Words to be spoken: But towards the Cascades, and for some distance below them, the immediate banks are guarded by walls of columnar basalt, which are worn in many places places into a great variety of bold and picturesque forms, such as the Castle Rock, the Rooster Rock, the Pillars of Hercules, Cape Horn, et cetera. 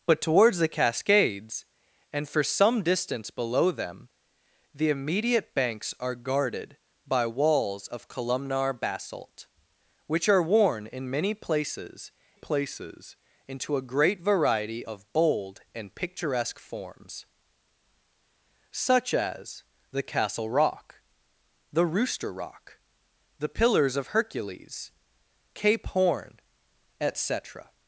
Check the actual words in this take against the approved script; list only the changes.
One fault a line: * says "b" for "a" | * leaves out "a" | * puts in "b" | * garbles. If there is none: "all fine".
all fine